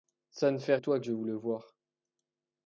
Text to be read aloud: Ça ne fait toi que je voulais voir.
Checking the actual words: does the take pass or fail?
pass